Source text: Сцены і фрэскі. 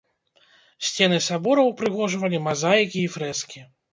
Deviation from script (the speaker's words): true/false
true